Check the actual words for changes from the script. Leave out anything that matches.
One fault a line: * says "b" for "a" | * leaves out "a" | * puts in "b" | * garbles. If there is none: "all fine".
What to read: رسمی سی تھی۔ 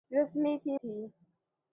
all fine